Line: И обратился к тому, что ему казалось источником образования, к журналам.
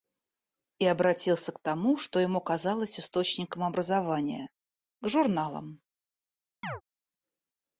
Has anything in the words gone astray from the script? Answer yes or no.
no